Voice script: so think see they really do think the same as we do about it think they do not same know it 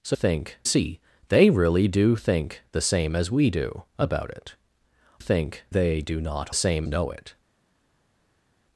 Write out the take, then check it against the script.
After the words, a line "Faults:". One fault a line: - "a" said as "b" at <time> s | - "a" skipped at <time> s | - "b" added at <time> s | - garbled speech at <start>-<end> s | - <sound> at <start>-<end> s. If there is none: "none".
so think see they really do think the same as we do about it think they do not same know it
Faults:
none